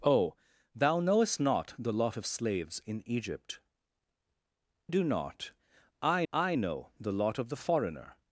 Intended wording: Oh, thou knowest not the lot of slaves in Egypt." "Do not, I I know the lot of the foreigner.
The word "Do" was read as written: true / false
true